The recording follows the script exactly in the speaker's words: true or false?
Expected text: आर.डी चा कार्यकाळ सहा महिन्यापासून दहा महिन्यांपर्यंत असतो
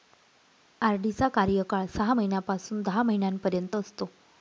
true